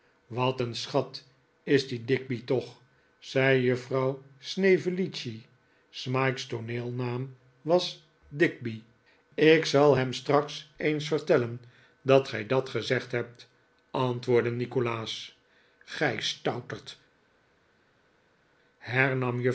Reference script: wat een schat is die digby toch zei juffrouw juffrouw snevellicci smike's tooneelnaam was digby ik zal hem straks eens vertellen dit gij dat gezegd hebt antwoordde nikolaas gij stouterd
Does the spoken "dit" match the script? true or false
false